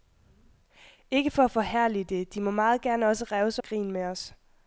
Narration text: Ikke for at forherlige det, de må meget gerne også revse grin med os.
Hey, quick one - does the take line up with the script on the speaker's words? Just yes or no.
yes